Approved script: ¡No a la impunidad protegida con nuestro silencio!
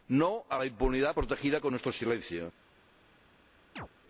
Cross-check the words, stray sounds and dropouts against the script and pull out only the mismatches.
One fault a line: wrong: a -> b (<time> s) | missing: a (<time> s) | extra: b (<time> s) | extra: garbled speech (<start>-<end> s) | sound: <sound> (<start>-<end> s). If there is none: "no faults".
sound: chirp (3.8-3.9 s)